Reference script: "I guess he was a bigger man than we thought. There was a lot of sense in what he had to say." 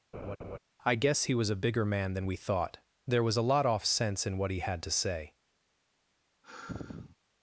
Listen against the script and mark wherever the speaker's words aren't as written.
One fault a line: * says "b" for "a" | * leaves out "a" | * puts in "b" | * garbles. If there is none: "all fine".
* says "off" for "of"